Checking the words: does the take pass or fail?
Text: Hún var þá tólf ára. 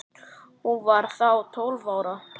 pass